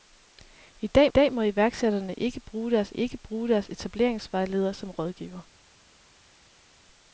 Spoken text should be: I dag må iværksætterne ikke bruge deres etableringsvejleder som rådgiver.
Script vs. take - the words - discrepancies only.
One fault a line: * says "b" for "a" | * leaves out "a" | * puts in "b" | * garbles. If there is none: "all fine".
* puts in "dag"
* puts in "ikke bruge deres"